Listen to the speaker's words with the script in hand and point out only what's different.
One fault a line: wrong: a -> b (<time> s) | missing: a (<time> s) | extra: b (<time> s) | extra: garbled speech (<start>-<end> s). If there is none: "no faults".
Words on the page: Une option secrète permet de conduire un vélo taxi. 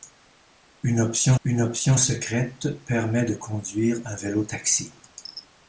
extra: une option (1.4 s)